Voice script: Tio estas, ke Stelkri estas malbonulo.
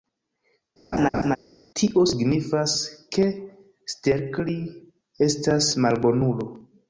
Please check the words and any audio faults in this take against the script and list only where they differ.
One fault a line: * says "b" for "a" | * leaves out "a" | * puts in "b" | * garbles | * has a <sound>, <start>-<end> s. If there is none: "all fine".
* has a laugh, 0.9-1.4 s
* says "signifas" for "estas"